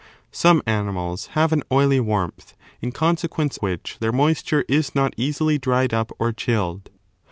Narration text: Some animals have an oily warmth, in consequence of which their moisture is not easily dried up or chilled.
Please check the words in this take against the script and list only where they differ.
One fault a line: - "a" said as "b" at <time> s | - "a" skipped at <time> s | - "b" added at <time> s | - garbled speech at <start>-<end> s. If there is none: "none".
- "of" skipped at 3.6 s